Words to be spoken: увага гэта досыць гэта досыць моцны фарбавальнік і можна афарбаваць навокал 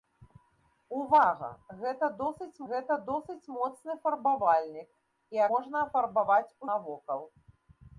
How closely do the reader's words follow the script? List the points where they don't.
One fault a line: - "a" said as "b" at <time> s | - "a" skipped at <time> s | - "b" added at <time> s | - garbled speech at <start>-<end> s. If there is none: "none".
none